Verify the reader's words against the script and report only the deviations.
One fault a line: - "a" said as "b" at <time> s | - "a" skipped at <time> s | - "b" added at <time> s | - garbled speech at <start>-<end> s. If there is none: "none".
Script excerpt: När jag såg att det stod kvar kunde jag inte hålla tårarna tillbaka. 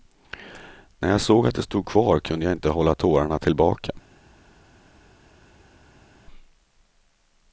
none